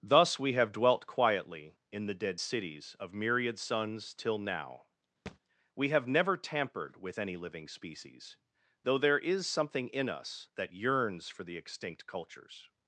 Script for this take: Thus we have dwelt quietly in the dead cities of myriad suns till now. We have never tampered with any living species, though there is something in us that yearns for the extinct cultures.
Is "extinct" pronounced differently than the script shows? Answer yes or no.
no